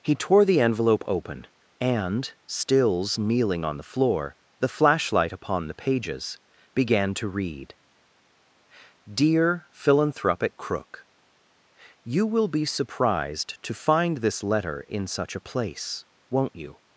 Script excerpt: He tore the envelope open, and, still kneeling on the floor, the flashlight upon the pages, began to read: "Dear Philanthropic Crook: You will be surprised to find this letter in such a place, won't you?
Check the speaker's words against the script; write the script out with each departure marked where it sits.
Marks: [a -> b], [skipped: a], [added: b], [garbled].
He tore the envelope open, and, [still -> stills] kneeling on the floor, the flashlight upon the pages, began to read: "Dear Philanthropic Crook: You will be surprised to find this letter in such a place, won't you?